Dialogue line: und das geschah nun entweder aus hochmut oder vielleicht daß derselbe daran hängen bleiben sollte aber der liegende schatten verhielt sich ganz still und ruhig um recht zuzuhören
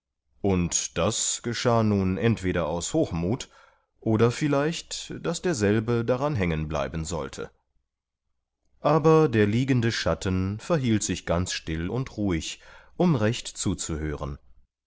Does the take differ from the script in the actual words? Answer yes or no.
no